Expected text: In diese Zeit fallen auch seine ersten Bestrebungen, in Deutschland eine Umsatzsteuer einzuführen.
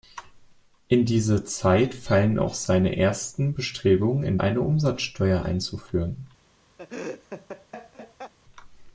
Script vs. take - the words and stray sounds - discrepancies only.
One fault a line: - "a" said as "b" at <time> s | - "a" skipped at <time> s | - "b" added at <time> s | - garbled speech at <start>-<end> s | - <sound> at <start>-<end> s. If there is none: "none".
- "Deutschland" skipped at 4.4 s
- laugh at 6.8-8.3 s